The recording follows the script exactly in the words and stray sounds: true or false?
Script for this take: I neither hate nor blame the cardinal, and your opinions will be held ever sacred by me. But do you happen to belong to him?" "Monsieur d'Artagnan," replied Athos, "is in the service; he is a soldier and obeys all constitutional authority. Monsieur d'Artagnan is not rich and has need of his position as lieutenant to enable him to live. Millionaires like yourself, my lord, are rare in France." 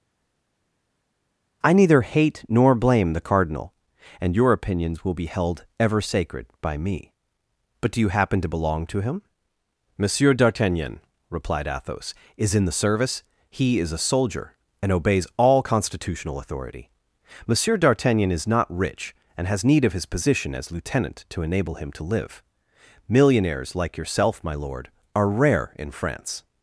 true